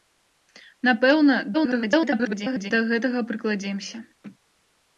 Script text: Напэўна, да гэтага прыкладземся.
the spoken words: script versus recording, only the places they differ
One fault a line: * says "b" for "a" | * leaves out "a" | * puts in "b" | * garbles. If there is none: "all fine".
* garbles